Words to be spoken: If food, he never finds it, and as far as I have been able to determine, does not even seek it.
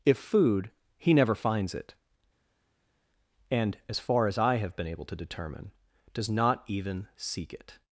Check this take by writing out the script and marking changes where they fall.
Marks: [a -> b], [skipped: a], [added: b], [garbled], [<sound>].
If food, he never finds it, and as far as I have been able to determine, does not even seek it.